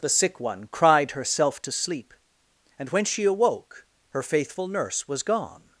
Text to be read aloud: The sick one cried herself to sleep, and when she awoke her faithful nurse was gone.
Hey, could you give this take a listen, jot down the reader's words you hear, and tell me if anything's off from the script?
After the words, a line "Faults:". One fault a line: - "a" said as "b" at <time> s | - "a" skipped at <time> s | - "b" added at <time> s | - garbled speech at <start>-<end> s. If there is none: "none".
The sick one cried herself to sleep, and when she awoke her faithful nurse was gone.
Faults:
none